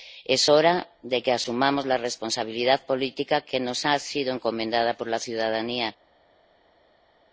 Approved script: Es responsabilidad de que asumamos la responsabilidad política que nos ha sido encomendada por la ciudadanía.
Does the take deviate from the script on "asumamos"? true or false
false